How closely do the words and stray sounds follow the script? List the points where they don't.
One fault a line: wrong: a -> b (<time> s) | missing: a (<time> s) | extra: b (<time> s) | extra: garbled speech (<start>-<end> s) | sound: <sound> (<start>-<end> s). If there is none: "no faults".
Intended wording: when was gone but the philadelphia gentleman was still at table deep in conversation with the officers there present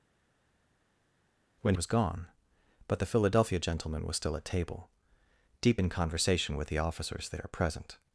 no faults